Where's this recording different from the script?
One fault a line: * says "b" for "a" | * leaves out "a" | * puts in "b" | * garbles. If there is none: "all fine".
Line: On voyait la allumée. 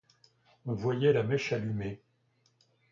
* puts in "mèche"